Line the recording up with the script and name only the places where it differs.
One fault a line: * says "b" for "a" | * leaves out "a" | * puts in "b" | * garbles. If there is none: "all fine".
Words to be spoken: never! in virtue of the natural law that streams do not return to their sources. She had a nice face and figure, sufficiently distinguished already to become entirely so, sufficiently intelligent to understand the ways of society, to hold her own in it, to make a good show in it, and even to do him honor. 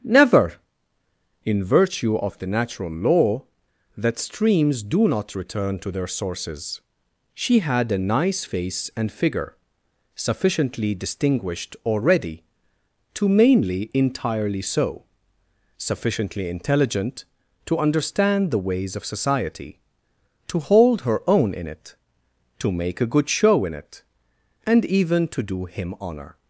* says "mainly" for "become"